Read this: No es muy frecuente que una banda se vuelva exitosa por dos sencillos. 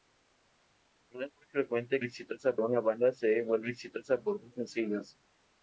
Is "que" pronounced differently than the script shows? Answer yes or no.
yes